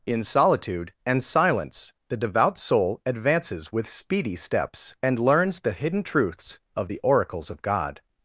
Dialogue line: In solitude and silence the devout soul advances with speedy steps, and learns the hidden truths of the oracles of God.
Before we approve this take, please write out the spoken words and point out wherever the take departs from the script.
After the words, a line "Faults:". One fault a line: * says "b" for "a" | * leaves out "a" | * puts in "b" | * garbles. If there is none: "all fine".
In solitude and silence the devout soul advances with speedy steps, and learns the hidden truths of the oracles of God.
Faults:
all fine